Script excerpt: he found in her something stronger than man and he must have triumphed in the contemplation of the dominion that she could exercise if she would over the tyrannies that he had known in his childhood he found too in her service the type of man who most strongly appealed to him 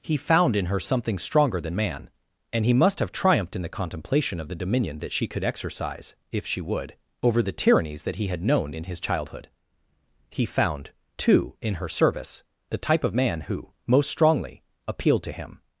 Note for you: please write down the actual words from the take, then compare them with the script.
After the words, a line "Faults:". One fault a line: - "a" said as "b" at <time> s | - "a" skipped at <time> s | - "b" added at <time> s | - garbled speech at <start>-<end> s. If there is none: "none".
he found in her something stronger than man and he must have triumphed in the contemplation of the dominion that she could exercise if she would over the tyrannies that he had known in his childhood he found too in her service the type of man who most strongly appealed to him
Faults:
none